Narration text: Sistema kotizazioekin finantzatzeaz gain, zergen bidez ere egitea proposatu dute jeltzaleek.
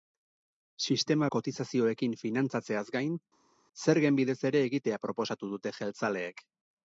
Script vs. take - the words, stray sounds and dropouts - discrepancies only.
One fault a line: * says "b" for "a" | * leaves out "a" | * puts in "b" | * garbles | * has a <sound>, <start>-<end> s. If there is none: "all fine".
all fine